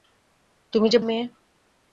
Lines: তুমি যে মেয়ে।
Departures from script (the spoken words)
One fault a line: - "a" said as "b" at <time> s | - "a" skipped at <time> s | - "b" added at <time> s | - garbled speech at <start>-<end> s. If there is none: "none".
none